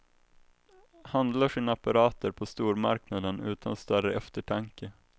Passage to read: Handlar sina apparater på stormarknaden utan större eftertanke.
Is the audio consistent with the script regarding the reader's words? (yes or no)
yes